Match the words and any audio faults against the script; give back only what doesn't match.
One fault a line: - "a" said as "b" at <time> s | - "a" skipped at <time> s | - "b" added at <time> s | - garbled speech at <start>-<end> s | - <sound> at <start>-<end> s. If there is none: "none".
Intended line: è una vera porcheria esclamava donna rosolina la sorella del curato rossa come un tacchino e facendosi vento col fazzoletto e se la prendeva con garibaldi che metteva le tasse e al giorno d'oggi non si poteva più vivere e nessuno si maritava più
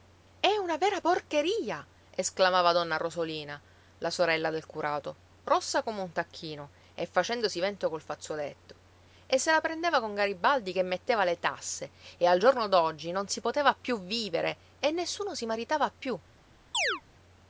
- chirp at 16.7-17.0 s